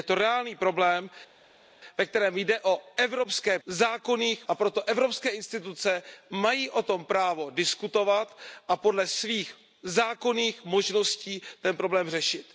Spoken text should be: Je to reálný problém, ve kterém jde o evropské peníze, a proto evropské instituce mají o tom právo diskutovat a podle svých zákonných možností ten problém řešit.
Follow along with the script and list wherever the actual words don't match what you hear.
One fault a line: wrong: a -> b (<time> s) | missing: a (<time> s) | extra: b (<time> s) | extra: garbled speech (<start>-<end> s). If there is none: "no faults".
wrong: peníze -> zákonných (3.7 s)